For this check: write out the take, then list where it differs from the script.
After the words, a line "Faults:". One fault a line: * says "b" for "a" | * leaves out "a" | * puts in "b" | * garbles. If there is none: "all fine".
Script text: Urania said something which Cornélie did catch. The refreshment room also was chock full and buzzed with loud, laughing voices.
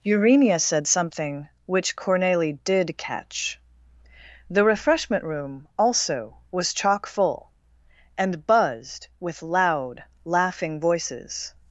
Urania said something which Cornélie did catch. The refreshment room also was chock full and buzzed with loud, laughing voices.
Faults:
all fine